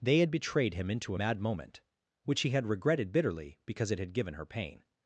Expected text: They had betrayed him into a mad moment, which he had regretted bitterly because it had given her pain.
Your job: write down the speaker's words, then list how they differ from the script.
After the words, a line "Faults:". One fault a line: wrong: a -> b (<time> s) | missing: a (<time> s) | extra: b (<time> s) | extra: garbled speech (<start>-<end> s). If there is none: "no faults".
They had betrayed him into a mad moment, which he had regretted bitterly because it had given her pain.
Faults:
no faults